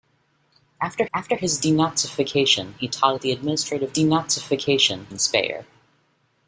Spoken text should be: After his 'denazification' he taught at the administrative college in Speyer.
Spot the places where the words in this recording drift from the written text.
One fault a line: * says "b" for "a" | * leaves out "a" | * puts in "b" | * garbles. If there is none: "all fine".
* puts in "after"
* says "denazification" for "college"